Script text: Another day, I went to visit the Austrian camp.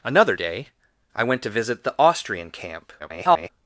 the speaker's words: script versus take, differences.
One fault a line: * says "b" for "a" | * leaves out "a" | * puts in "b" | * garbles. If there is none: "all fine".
* garbles